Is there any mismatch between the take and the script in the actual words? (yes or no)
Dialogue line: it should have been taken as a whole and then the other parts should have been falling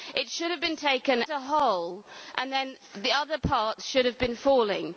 yes